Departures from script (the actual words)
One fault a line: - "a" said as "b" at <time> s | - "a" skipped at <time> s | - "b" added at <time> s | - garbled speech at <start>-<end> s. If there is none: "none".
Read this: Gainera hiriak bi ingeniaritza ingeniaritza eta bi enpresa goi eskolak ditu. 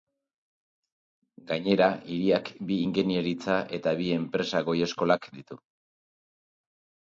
- "ingeniaritza" skipped at 3.6 s